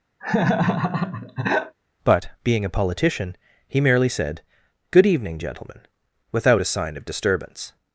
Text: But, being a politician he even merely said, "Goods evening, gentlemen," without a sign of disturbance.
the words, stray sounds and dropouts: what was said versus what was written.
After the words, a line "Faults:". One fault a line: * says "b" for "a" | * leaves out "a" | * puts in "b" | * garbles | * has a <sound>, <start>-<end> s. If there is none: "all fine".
But, being a politician he merely said, "Good evening, gentlemen," without a sign of disturbance.
Faults:
* has a laugh, 0.2-1.8 s
* leaves out "even"
* says "Good" for "Goods"